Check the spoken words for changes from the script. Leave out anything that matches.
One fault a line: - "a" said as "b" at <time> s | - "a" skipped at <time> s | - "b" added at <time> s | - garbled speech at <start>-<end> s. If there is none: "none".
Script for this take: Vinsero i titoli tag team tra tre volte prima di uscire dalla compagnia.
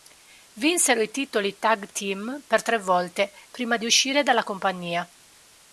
- "tra" said as "per" at 2.5 s